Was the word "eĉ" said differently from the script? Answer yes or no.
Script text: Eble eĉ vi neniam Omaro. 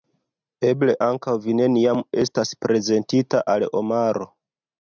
yes